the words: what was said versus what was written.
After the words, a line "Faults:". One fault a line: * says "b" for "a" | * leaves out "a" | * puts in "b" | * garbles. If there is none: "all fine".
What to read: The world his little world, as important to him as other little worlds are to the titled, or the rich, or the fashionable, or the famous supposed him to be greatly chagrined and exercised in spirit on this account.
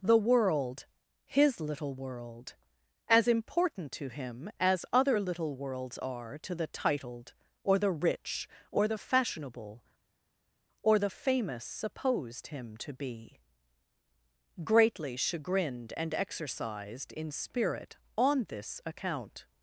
The world his little world, as important to him as other little worlds are to the titled, or the rich, or the fashionable, or the famous supposed him to be greatly chagrined and exercised in spirit on this account.
Faults:
all fine